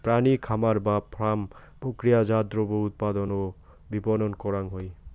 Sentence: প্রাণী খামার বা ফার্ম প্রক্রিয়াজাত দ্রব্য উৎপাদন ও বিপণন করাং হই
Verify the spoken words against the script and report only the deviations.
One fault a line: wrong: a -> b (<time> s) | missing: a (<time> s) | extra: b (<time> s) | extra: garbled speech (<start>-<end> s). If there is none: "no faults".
no faults